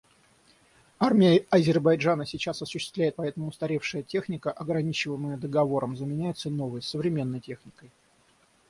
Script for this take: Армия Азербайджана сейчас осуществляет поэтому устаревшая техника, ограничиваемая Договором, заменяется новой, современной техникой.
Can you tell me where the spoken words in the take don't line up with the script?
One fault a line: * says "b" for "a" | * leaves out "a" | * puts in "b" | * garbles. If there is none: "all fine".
all fine